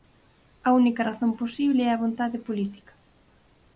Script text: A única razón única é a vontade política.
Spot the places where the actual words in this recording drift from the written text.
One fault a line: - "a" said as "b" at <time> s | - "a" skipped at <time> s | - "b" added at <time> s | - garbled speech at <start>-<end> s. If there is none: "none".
- "única" said as "posible" at 1.4 s